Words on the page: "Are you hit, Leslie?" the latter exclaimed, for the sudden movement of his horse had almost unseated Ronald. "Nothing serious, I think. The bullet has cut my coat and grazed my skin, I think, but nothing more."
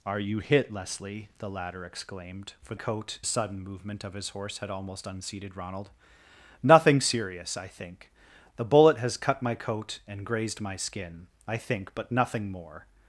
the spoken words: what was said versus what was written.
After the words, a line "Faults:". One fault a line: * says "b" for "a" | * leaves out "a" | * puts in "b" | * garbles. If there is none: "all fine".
"Are you hit, Leslie?" the latter exclaimed, for coat sudden movement of his horse had almost unseated Ronald. "Nothing serious, I think. The bullet has cut my coat and grazed my skin, I think, but nothing more."
Faults:
* says "coat" for "the"